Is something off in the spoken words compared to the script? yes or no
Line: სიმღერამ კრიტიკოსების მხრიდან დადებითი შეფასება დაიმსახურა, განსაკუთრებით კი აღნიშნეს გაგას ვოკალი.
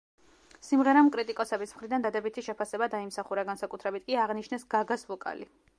no